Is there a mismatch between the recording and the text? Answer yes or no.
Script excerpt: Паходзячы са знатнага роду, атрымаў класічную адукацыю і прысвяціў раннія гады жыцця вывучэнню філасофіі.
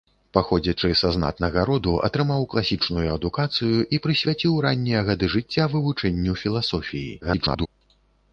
yes